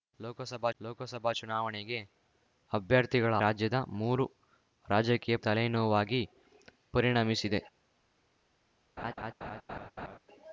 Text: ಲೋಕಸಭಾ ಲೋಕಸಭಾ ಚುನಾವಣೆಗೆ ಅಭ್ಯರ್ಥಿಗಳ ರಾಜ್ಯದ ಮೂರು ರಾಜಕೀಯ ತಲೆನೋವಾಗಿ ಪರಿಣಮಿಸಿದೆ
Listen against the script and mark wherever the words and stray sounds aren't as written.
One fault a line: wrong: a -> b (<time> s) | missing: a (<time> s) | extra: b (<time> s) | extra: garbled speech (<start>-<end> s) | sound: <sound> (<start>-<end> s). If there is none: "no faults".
sound: laugh (9.0-10.2 s)